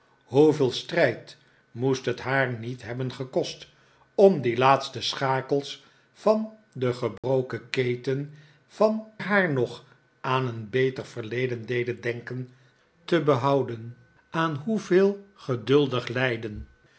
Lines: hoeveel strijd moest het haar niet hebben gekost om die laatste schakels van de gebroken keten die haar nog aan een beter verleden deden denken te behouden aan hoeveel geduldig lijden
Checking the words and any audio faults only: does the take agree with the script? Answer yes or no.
no